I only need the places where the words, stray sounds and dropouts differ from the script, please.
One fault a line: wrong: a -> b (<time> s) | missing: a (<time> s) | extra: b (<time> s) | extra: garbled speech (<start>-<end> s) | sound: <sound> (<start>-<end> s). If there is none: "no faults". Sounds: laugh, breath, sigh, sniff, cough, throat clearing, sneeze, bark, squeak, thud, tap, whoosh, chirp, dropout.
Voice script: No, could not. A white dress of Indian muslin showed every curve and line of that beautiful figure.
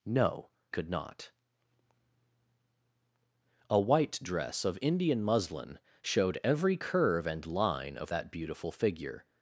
no faults